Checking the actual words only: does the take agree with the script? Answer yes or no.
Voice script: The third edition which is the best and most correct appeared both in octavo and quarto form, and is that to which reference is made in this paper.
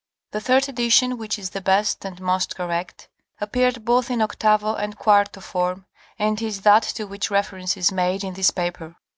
yes